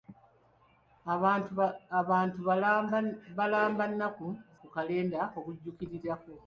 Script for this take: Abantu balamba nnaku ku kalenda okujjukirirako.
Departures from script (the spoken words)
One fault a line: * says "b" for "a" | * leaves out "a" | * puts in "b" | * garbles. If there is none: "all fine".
all fine